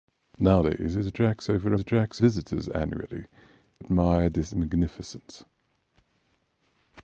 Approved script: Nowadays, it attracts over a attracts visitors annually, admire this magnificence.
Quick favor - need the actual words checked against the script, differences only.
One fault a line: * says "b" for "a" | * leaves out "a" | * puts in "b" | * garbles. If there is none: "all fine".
all fine